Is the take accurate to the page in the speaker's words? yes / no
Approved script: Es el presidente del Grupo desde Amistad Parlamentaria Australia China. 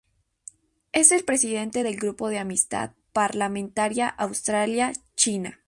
no